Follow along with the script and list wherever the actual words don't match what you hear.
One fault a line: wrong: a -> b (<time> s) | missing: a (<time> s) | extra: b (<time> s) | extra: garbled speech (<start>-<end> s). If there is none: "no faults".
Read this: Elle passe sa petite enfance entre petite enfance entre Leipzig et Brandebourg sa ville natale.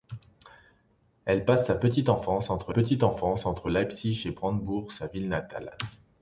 no faults